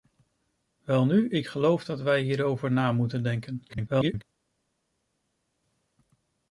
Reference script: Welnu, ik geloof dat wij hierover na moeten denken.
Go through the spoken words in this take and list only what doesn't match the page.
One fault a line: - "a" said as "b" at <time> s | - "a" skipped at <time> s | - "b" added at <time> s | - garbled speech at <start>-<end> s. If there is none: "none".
- garbled speech at 3.7-4.2 s